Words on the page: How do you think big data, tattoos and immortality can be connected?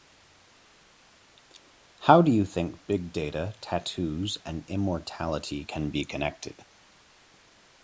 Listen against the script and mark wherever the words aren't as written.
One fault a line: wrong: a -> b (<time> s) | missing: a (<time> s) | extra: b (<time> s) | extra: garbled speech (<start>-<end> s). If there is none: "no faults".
no faults